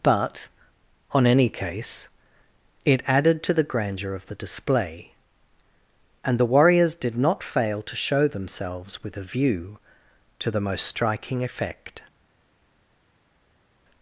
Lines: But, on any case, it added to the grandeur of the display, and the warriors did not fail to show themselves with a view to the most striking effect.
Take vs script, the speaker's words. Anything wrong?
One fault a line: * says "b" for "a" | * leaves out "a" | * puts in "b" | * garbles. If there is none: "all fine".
all fine